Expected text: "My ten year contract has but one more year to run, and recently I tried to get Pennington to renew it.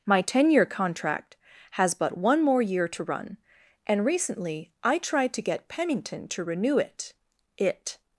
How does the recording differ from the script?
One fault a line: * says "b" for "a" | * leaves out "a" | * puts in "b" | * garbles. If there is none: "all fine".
* puts in "it"